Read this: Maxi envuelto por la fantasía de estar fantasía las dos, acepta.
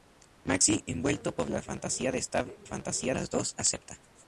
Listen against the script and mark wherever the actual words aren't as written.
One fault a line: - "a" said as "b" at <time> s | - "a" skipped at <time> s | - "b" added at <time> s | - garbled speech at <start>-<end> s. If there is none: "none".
none